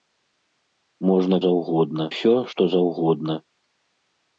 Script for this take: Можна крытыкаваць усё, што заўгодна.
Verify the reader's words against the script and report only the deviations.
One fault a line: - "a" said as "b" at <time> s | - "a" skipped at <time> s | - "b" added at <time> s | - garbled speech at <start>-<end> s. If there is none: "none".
- "крытыкаваць" said as "заўгодна" at 1.5 s